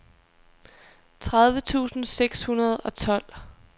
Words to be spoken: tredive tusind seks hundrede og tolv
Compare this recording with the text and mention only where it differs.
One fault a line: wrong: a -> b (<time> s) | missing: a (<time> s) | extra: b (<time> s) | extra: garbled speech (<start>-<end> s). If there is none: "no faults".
no faults